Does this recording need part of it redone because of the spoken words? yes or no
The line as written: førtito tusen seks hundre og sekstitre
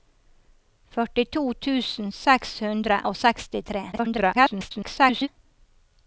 yes